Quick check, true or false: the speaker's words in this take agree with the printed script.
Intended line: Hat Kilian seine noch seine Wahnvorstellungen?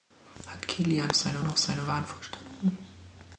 true